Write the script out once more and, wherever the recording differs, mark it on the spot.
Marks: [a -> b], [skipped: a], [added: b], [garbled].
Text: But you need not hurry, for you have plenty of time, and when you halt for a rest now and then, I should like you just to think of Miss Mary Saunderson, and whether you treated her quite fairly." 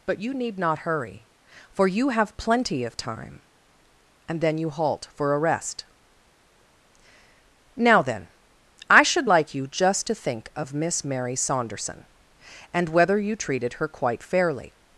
But you need not hurry, for you have plenty of time, and [when -> then] you halt for a rest now [skipped: and] then, I should like you just to think of Miss Mary Saunderson, and whether you treated her quite fairly."